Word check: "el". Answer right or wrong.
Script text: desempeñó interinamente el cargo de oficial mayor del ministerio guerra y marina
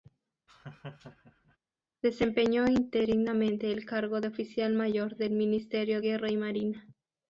right